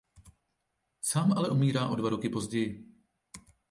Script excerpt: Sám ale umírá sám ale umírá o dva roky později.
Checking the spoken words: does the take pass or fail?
fail